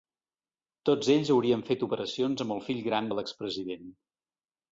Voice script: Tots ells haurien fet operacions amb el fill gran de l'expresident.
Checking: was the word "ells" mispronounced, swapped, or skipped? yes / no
no